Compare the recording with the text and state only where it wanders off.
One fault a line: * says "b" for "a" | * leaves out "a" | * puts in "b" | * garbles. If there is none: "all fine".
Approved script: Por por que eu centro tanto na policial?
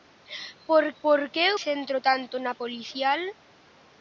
all fine